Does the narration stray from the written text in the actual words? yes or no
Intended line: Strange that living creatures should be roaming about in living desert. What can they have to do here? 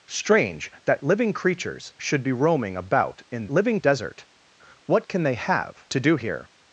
no